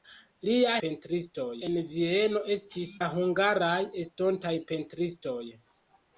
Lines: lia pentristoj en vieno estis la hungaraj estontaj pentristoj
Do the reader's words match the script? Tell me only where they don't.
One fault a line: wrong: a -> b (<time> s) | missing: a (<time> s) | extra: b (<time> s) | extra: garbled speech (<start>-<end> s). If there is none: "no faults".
no faults